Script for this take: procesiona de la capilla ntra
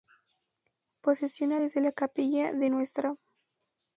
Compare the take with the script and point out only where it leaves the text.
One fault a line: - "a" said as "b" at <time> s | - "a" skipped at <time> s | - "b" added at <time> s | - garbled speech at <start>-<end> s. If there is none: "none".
- "de" said as "desde" at 1.6 s
- "de" added at 2.5 s